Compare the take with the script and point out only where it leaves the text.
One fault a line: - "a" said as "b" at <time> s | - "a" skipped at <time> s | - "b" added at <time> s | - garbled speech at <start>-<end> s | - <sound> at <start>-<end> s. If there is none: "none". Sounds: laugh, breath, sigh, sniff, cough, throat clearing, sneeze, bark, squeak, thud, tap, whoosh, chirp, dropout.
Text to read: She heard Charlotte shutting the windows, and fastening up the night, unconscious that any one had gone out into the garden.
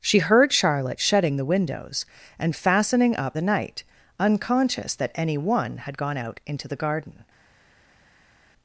none